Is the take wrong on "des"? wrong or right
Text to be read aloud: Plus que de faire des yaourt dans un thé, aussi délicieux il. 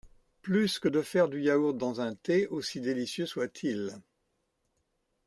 wrong